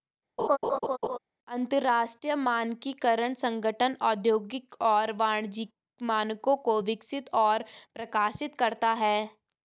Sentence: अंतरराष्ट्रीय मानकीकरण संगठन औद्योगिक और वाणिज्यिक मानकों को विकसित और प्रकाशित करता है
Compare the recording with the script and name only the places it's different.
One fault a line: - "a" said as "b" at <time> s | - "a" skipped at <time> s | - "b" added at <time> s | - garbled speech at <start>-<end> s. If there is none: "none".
none